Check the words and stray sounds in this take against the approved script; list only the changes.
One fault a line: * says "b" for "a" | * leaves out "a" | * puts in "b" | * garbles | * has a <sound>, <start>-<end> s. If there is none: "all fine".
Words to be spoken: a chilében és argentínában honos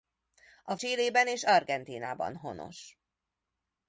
all fine